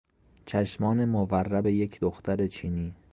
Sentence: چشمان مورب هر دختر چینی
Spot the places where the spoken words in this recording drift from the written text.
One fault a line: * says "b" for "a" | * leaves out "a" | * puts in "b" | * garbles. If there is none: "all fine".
* says "یک" for "هر"